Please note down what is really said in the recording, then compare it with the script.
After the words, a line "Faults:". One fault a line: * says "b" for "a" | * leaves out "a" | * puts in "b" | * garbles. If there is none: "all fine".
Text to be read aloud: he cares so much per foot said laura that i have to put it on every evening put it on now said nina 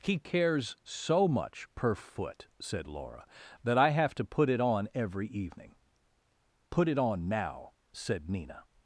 he cares so much per foot said laura that i have to put it on every evening put it on now said nina
Faults:
all fine